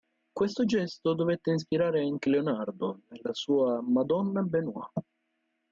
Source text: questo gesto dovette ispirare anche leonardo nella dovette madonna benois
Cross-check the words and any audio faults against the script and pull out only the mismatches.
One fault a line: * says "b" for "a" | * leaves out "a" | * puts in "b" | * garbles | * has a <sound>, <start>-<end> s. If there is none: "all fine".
* says "sua" for "dovette"